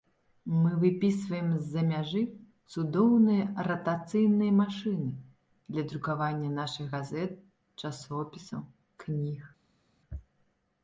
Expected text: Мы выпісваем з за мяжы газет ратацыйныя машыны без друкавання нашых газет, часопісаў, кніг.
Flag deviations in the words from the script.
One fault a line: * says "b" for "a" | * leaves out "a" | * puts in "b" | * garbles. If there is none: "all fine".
* says "цудоўныя" for "газет"
* says "для" for "без"